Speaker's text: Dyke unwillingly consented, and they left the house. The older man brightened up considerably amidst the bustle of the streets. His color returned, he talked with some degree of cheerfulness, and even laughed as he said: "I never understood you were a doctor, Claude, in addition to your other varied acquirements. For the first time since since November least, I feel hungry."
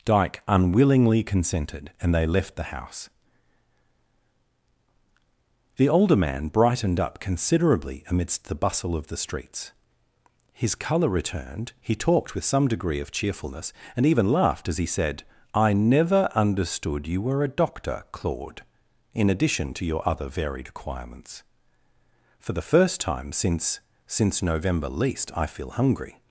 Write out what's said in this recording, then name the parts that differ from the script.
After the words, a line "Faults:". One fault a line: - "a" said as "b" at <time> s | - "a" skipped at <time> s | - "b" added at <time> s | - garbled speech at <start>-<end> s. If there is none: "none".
Dyke unwillingly consented, and they left the house. The older man brightened up considerably amidst the bustle of the streets. His color returned, he talked with some degree of cheerfulness, and even laughed as he said: "I never understood you were a doctor, Claude, in addition to your other varied acquirements. For the first time since since November least, I feel hungry."
Faults:
none